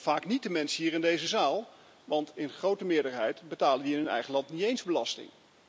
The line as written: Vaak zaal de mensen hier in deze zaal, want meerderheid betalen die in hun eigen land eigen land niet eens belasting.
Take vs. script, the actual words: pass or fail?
fail